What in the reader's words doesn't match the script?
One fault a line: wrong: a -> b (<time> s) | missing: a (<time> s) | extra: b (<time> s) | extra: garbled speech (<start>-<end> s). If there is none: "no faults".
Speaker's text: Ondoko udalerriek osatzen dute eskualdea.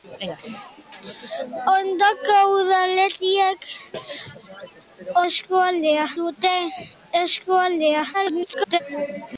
wrong: osatzen -> eskualdea (5.3 s)
extra: garbled speech (8.1-8.8 s)